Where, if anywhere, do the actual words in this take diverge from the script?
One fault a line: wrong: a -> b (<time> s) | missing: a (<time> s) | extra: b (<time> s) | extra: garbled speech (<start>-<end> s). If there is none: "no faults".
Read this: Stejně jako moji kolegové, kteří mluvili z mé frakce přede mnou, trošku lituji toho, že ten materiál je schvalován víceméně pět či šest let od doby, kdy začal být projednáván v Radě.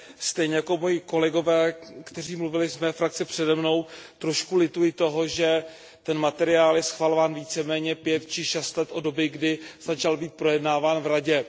no faults